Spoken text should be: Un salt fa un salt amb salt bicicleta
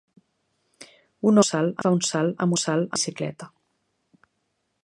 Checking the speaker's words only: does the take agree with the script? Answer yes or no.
yes